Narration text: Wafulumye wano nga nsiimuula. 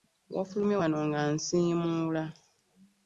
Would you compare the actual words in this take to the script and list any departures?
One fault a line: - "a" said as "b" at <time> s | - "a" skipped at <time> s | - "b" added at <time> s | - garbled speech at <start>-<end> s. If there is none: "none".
none